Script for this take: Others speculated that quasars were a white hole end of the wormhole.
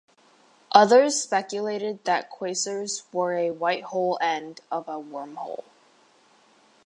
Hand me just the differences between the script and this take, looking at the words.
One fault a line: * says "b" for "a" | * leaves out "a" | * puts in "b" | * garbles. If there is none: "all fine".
* says "a" for "the"